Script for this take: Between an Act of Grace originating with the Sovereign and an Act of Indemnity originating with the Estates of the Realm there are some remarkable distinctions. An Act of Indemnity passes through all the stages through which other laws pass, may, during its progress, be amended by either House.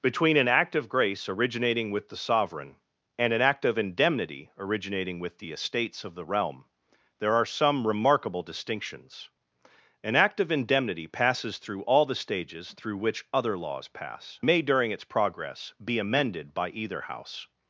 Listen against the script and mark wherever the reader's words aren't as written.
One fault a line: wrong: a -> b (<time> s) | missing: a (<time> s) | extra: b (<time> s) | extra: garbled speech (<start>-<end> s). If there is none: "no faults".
no faults